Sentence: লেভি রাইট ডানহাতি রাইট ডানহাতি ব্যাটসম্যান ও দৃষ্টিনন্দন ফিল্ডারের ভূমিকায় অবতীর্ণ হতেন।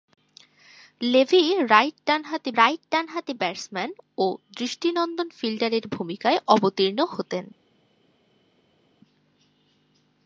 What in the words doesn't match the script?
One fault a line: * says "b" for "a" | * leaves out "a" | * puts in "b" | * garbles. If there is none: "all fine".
all fine